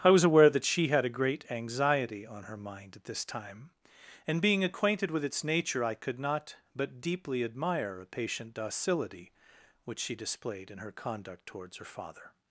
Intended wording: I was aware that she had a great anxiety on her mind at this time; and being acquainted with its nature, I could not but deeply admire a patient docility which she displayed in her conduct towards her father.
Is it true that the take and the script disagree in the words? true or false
false